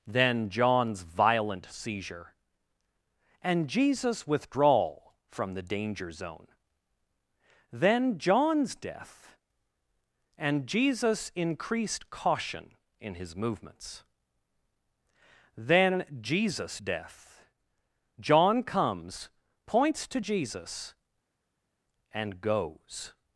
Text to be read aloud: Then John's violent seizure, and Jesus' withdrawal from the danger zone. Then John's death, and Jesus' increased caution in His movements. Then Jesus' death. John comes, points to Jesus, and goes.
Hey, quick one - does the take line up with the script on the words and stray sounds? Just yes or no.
yes